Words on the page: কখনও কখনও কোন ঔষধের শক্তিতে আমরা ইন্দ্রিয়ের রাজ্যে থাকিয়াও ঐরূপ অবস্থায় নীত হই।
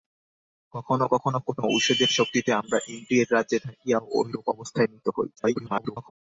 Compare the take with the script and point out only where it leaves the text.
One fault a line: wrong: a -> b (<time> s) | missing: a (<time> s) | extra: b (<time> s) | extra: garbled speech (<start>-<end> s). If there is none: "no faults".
extra: garbled speech (5.4-6.1 s)